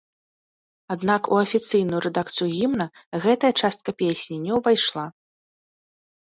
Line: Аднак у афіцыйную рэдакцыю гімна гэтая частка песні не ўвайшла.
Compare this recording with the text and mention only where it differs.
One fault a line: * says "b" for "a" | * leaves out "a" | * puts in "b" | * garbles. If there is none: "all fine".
all fine